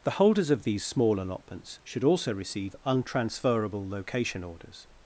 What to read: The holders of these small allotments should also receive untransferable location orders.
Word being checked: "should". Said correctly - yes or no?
yes